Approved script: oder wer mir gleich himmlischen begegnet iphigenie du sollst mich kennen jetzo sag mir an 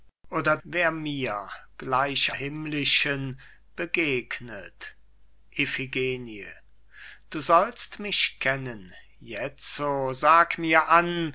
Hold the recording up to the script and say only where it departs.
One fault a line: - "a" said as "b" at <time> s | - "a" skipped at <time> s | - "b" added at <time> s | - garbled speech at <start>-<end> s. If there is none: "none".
none